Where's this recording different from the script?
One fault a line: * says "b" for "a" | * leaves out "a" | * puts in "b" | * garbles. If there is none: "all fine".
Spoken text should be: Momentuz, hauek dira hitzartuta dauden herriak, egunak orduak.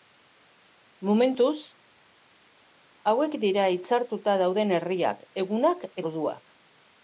all fine